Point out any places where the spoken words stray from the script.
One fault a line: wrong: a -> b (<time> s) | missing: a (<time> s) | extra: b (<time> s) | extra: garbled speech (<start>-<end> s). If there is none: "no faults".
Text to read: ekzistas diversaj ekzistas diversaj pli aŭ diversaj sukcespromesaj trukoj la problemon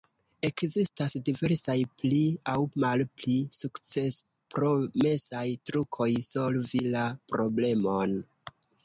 missing: ekzistas diversaj (1.8 s)
wrong: diversaj -> malpli (2.8 s)
extra: solvi (6.3 s)